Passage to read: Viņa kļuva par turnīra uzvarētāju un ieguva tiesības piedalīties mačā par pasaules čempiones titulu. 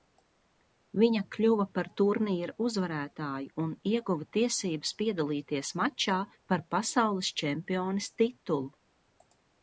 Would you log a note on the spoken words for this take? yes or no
no